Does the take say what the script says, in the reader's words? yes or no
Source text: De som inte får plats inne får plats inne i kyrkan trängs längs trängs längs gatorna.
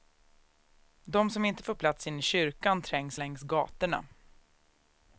no